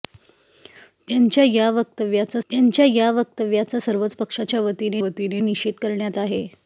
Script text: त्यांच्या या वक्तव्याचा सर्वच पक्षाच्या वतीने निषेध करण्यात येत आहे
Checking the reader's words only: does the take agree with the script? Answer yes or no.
no